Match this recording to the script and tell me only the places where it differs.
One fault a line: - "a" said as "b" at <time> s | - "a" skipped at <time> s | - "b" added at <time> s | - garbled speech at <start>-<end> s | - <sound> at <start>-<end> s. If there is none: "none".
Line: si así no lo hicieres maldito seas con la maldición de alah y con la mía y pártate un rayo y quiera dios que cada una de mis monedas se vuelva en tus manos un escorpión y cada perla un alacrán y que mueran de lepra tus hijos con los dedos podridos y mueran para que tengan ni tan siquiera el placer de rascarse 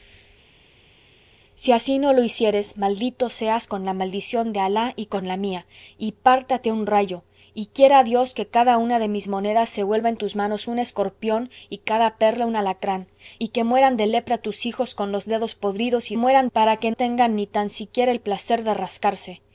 none